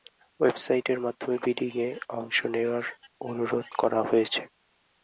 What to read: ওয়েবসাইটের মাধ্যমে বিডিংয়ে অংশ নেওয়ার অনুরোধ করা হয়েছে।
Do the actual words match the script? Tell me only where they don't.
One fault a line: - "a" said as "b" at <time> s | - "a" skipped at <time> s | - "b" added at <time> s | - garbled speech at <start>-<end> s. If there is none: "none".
none